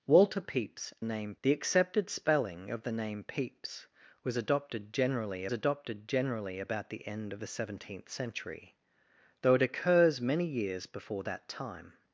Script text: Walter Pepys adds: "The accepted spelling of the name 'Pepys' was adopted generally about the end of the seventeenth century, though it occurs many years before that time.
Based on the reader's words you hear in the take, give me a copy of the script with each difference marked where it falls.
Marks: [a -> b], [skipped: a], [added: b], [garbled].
Walter Pepys [adds: -> name] "The accepted spelling of the name 'Pepys' was adopted generally [added: adopted generally] about the end of the seventeenth century, though it occurs many years before that time.